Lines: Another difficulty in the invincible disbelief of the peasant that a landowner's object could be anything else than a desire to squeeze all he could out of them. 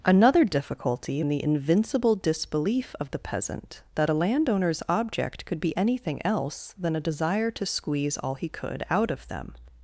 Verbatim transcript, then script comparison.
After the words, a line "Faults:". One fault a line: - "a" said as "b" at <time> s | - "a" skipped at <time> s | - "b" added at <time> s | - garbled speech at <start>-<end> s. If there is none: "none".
Another difficulty in the invincible disbelief of the peasant that a landowner's object could be anything else than a desire to squeeze all he could out of them.
Faults:
none